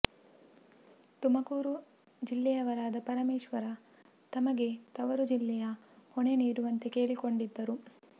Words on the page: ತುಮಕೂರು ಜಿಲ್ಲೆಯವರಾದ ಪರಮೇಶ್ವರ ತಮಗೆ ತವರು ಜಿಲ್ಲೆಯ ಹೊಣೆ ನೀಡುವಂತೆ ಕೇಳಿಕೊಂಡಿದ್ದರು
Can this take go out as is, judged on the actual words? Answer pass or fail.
pass